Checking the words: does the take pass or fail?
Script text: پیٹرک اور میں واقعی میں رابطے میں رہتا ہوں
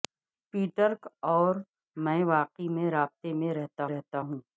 fail